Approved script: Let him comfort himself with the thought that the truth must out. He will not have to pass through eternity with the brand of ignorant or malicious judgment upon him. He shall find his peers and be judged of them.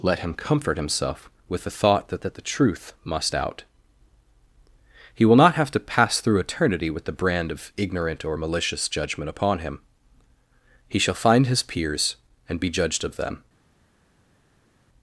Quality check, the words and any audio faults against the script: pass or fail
fail